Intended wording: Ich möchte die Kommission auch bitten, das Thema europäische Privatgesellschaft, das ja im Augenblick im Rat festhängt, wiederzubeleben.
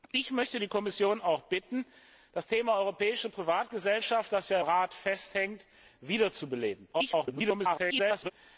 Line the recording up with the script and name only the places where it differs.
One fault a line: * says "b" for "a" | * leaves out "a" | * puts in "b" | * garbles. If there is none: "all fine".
* leaves out "im Augenblick im"
* garbles